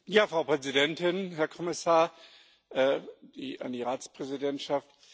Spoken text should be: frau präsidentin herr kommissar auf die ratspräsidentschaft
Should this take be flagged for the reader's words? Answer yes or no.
yes